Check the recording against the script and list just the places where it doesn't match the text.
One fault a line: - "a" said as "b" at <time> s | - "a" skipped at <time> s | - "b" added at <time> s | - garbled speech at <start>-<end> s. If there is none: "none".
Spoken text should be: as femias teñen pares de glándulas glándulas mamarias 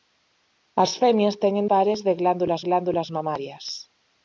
none